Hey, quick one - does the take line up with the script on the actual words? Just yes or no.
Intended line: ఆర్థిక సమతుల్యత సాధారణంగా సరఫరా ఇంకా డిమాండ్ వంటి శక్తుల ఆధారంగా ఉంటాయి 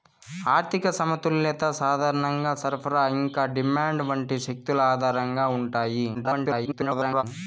no